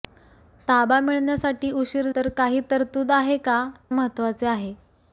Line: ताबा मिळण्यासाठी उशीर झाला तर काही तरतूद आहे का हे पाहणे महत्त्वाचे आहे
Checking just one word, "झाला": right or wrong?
wrong